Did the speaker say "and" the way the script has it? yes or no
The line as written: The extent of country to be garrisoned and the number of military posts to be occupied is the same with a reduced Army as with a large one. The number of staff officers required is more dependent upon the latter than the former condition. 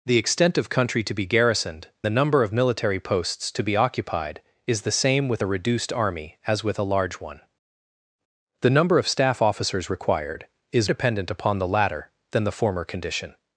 no